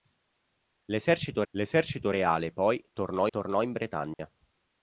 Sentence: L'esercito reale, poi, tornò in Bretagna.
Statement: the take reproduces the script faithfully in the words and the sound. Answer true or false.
false